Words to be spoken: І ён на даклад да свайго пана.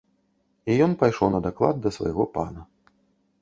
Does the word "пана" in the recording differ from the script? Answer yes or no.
no